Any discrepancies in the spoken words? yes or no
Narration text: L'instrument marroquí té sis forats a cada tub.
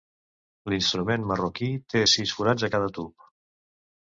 no